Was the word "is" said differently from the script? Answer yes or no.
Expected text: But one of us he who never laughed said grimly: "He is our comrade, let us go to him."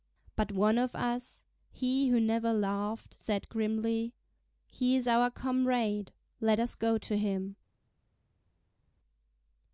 no